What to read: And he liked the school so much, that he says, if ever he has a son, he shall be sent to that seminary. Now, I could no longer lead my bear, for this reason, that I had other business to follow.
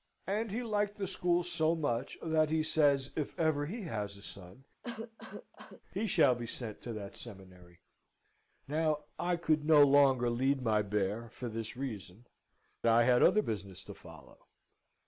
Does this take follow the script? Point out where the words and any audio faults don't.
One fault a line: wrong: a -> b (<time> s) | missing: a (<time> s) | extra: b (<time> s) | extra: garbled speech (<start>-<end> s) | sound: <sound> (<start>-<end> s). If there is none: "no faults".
sound: cough (4.8-5.8 s)
missing: that (12.3 s)